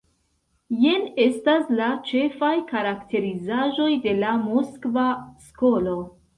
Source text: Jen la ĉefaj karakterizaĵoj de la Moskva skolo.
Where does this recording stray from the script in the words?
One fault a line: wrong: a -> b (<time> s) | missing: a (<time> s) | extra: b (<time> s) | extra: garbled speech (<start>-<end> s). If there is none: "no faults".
extra: estas (1.2 s)